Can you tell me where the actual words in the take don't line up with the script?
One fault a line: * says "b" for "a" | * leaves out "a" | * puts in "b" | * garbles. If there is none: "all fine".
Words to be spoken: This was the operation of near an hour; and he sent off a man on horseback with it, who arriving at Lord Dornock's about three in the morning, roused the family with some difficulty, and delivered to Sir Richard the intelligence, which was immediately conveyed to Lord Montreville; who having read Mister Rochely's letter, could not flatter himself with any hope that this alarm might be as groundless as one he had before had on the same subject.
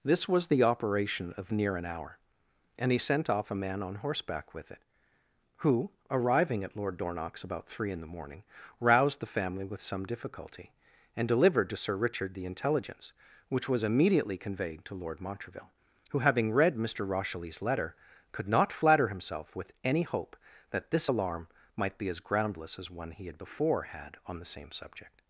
all fine